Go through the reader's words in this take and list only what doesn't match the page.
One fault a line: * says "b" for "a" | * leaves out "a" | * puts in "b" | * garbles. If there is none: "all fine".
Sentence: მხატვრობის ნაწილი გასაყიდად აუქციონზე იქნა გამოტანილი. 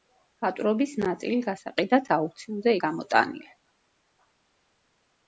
* leaves out "იქნა"